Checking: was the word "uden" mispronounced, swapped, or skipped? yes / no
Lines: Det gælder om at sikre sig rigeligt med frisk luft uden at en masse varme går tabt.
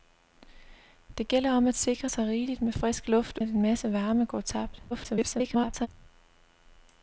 yes